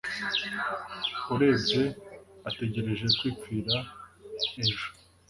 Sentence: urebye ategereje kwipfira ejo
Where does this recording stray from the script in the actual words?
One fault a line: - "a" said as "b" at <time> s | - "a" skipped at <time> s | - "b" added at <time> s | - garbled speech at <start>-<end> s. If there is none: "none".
none